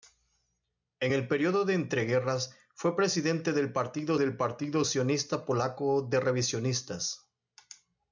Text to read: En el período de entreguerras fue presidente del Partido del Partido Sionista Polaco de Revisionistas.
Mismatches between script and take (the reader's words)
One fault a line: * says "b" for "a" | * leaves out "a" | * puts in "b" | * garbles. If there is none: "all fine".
all fine